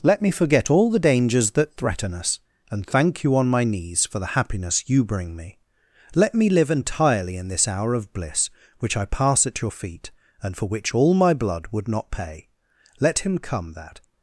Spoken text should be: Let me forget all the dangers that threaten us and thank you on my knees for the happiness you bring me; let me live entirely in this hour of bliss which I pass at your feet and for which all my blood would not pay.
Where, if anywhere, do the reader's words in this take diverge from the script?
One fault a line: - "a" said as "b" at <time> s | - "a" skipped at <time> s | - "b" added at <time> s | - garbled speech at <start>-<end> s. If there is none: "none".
- "Let him come that" added at 13.0 s